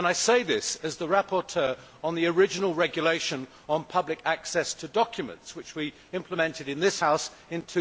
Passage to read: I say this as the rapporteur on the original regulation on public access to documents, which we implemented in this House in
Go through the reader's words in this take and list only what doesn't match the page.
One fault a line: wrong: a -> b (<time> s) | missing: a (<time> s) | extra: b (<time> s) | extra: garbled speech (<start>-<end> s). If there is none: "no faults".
no faults